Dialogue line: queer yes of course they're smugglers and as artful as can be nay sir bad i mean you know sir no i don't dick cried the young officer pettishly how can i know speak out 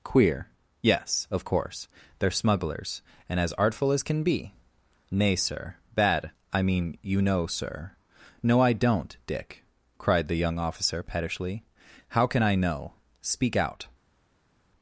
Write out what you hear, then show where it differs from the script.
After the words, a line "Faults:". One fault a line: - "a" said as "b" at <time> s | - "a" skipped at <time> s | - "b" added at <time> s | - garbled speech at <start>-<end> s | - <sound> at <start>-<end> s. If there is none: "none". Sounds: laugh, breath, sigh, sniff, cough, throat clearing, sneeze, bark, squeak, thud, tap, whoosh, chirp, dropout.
queer yes of course they're smugglers and as artful as can be nay sir bad i mean you know sir no i don't dick cried the young officer pettishly how can i know speak out
Faults:
none